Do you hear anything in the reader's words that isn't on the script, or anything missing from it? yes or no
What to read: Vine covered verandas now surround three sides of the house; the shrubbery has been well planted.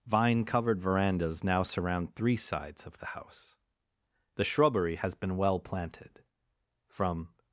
yes